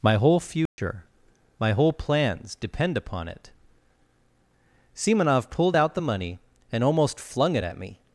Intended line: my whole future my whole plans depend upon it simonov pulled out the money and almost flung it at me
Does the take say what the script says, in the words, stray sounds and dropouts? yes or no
no